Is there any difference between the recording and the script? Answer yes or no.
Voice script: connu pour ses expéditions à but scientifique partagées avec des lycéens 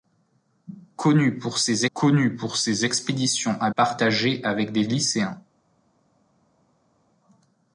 yes